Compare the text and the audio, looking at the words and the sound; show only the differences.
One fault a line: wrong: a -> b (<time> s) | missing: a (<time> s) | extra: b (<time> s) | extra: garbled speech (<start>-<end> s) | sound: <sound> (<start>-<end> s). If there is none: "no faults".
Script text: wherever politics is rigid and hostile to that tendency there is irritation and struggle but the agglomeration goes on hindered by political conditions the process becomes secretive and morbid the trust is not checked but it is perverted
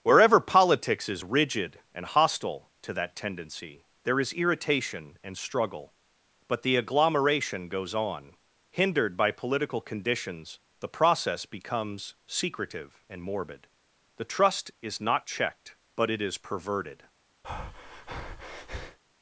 sound: breath (17.4-19.0 s)